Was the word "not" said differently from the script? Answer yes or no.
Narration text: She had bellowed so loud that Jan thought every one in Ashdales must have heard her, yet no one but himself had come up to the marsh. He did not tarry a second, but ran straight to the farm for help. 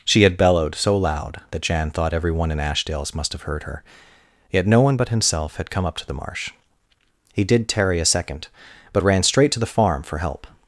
yes